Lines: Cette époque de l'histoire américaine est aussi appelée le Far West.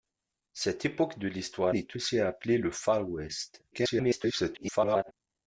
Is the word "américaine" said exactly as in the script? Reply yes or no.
no